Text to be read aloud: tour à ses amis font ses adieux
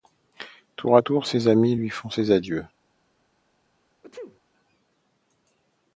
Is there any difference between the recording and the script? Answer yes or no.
yes